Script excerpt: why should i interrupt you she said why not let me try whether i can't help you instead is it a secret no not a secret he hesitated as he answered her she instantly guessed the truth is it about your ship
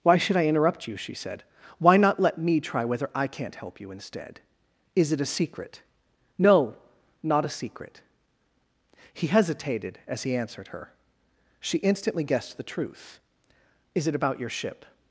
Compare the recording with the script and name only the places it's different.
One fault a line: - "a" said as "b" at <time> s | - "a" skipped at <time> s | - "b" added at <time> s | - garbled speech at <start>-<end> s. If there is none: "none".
none